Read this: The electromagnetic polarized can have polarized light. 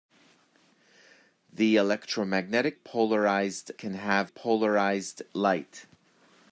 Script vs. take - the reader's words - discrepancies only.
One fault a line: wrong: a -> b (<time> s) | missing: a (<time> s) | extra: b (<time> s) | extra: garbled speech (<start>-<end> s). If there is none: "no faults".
no faults